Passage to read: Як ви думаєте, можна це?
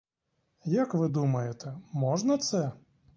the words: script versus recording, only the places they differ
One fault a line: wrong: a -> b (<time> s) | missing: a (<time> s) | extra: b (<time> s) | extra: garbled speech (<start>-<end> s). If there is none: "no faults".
no faults